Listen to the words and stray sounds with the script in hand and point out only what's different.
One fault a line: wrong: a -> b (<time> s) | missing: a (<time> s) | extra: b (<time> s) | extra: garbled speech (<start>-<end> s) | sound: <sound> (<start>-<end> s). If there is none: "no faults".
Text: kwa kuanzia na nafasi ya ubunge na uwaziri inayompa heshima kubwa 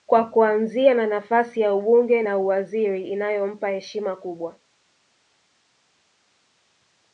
no faults